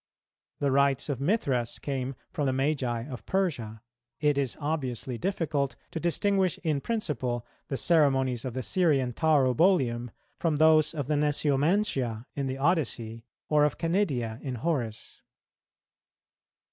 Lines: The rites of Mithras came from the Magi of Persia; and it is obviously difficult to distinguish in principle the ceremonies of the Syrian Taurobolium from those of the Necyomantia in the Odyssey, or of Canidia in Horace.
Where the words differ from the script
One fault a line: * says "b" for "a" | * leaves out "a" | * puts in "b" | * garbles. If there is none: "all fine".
* leaves out "and"